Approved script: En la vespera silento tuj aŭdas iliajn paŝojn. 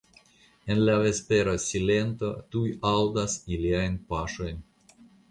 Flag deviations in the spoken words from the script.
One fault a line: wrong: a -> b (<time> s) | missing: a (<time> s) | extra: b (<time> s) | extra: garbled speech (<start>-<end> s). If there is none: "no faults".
no faults